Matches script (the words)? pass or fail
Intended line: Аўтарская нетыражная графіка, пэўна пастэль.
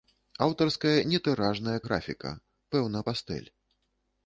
pass